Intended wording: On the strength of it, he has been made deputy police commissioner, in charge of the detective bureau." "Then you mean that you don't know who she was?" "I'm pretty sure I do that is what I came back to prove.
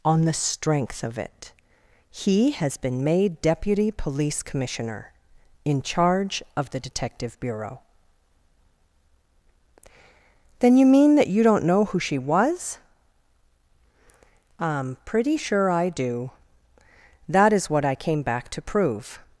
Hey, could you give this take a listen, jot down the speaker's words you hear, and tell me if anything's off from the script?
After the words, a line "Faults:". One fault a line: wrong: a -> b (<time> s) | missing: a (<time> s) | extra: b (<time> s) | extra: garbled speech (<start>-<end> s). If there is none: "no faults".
On the strength of it, he has been made deputy police commissioner, in charge of the detective bureau." "Then you mean that you don't know who she was?" "I'm pretty sure I do that is what I came back to prove.
Faults:
no faults